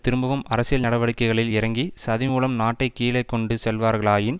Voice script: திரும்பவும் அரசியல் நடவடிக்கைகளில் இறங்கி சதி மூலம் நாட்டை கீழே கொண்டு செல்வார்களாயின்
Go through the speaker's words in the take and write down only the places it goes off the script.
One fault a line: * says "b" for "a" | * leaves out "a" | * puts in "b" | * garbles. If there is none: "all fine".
all fine